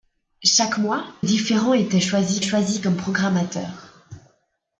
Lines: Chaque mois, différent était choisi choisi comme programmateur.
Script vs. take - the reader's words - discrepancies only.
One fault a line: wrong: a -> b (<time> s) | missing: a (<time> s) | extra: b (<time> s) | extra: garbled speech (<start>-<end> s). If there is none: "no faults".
no faults